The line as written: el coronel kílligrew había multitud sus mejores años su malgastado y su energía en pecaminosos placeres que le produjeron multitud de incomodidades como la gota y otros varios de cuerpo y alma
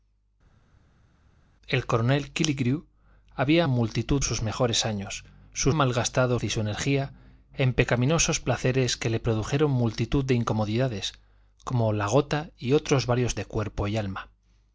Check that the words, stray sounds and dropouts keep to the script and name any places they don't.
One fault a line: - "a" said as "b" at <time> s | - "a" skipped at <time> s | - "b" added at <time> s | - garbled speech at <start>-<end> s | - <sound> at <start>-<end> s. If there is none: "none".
none